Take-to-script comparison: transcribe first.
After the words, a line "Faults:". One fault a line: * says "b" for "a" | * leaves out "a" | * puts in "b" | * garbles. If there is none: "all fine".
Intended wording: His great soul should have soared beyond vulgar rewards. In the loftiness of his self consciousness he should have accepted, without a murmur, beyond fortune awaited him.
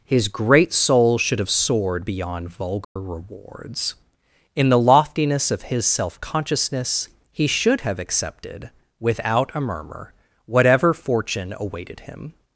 His great soul should have soared beyond vulgar rewards. In the loftiness of his self consciousness he should have accepted, without a murmur, whatever fortune awaited him.
Faults:
* says "whatever" for "beyond"